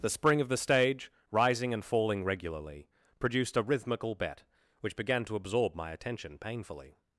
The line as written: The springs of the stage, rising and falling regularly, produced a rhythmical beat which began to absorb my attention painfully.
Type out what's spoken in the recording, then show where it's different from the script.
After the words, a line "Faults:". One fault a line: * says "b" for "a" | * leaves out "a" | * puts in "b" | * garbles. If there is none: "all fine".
The spring of the stage, rising and falling regularly, produced a rhythmical bet which began to absorb my attention painfully.
Faults:
* says "spring" for "springs"
* says "bet" for "beat"